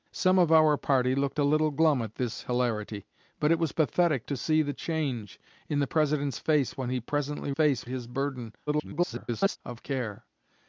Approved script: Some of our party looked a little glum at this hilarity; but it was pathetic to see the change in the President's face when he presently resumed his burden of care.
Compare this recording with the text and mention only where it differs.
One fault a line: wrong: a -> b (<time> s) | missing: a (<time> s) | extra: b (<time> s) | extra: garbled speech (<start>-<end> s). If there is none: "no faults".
wrong: resumed -> face (7.5 s)
extra: garbled speech (8.7-9.6 s)